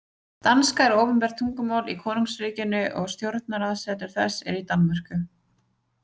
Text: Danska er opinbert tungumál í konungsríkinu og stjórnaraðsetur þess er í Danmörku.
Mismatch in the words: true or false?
false